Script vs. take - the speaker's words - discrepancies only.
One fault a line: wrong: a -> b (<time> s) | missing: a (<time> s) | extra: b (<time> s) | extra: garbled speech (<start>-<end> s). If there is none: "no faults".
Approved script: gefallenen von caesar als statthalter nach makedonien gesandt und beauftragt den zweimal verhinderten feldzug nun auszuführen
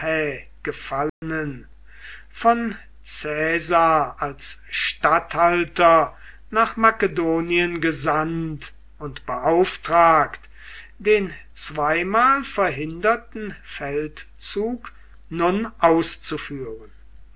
no faults